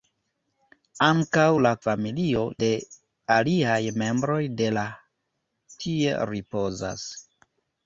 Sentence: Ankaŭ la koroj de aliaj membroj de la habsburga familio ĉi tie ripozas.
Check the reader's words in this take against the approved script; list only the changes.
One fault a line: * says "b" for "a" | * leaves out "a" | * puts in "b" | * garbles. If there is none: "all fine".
* says "familio" for "koroj"
* leaves out "habsburga familio ĉi"